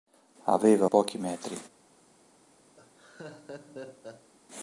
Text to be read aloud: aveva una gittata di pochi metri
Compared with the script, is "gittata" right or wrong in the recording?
wrong